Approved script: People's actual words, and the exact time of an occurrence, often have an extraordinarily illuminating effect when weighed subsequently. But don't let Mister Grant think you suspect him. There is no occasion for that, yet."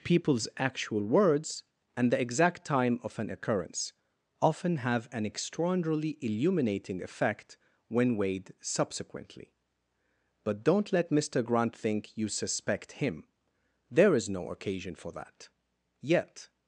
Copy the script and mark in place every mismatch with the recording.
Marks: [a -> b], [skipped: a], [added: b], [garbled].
People's actual words, and the exact time of an occurrence, often have an extraordinarily illuminating effect when weighed subsequently. But don't let Mister Grant think you suspect him. There is no occasion for that, yet."